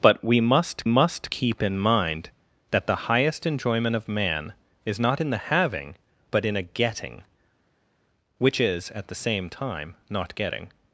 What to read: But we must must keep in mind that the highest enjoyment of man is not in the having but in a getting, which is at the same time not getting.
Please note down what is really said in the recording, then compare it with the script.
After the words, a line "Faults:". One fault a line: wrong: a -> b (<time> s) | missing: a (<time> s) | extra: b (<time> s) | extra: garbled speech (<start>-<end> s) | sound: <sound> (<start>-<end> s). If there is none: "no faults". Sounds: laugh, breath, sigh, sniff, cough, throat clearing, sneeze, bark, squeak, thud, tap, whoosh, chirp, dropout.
But we must must keep in mind that the highest enjoyment of man is not in the having but in a getting, which is at the same time not getting.
Faults:
no faults